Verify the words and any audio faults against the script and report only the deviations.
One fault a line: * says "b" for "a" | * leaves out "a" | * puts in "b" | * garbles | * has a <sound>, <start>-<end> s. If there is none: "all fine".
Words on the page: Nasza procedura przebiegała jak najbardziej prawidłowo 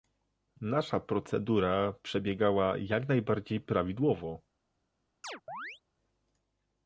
* has a chirp, 5.2-5.8 s